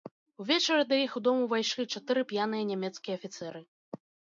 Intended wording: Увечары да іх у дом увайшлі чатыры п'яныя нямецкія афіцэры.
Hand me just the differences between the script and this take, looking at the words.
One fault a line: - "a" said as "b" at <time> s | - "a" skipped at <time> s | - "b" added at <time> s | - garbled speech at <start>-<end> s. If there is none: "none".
none